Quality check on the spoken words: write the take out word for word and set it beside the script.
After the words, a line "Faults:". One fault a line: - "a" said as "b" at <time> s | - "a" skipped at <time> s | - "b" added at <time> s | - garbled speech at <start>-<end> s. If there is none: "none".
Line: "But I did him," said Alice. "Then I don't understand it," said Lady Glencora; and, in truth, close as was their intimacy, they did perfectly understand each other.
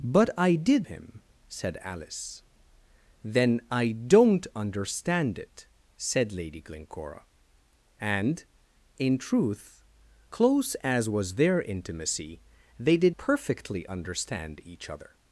"But I did him," said Alice. "Then I don't understand it," said Lady Glencora; and, in truth, close as was their intimacy, they did perfectly understand each other.
Faults:
none